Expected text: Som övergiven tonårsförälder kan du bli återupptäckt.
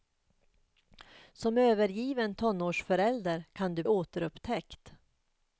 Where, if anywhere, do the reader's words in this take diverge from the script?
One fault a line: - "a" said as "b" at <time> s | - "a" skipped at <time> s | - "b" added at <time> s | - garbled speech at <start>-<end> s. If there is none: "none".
- "bli" skipped at 3.8 s